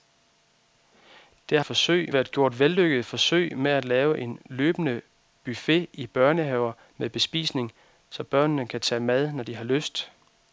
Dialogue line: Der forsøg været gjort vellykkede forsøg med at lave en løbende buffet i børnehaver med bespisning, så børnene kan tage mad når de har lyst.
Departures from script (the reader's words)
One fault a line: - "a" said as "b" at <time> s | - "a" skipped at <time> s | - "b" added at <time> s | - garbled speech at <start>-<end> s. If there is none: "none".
none